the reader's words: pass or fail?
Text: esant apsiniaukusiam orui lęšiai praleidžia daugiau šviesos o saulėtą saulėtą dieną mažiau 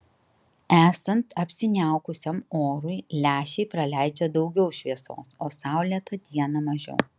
fail